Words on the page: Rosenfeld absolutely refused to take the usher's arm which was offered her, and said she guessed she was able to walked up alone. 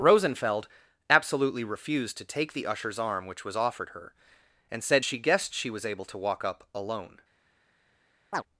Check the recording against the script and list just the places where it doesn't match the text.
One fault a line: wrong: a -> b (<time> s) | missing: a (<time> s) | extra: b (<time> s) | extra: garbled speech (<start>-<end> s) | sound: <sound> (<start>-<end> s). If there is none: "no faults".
wrong: walked -> walk (6.2 s)
sound: chirp (8.3-8.4 s)